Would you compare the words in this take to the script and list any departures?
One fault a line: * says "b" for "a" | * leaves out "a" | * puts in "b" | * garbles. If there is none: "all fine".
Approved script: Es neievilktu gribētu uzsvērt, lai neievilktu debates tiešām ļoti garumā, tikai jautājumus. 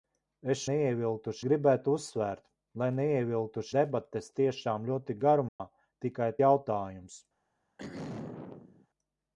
all fine